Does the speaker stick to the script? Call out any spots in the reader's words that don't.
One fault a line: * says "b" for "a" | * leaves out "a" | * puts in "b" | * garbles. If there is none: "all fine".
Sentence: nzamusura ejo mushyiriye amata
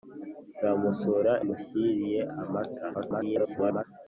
* leaves out "ejo"
* garbles